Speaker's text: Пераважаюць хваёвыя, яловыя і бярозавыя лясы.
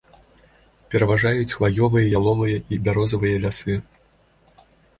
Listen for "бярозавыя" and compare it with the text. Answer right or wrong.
right